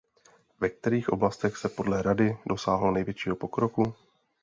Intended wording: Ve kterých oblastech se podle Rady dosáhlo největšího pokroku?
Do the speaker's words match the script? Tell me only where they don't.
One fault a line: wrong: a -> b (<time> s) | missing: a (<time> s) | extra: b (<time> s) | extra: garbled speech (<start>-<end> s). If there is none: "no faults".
no faults